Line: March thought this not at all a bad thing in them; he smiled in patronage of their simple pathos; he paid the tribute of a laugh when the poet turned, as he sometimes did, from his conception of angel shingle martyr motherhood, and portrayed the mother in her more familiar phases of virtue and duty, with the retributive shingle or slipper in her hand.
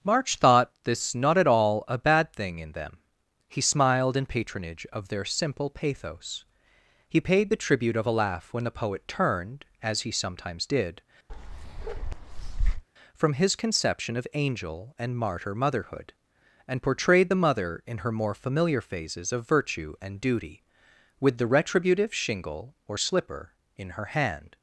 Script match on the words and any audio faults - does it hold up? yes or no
no